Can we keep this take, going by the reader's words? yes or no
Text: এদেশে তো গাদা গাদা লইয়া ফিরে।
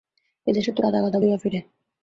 yes